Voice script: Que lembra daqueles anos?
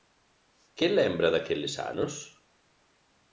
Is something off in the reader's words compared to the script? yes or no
no